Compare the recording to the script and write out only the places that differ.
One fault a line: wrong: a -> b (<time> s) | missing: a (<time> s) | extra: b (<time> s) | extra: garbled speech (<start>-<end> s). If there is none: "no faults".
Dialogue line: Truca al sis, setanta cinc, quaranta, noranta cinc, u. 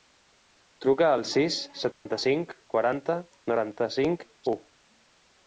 no faults